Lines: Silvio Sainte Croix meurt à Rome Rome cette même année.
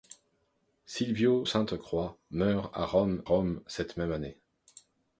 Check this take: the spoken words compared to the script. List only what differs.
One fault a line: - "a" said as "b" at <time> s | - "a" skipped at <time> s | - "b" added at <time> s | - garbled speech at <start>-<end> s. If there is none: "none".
none